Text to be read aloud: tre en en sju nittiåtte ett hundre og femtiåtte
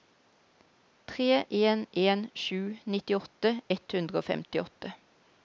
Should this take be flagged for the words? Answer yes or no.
no